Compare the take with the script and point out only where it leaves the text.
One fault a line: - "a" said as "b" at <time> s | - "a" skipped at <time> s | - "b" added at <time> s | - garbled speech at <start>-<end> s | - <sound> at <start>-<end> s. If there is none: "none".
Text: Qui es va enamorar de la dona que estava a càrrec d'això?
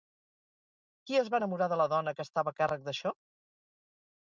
none